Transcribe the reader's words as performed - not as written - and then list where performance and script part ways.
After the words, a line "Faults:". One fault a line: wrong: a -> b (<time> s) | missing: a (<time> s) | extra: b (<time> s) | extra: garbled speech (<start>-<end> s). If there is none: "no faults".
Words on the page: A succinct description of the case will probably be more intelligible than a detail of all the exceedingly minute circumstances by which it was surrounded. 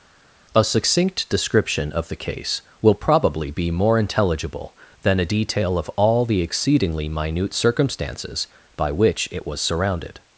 A succinct description of the case will probably be more intelligible than a detail of all the exceedingly minute circumstances by which it was surrounded.
Faults:
no faults